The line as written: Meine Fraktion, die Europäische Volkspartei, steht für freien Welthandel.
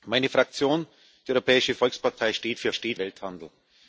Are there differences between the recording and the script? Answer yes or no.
yes